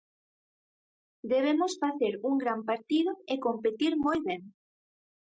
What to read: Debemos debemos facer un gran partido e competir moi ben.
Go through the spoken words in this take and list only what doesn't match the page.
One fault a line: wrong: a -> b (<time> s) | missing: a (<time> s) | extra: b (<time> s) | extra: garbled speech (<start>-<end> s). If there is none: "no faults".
missing: debemos (1.7 s)